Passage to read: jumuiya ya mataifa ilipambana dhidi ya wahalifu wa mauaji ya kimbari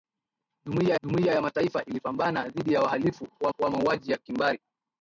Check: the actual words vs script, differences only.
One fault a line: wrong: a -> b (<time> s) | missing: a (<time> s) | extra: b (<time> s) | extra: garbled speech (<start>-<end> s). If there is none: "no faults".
extra: jumuiya (1.0 s)
extra: wa (3.6 s)